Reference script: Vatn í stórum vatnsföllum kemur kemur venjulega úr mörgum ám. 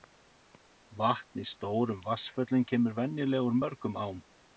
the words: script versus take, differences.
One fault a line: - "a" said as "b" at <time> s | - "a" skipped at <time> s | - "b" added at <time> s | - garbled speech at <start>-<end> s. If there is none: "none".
- "kemur" skipped at 3.0 s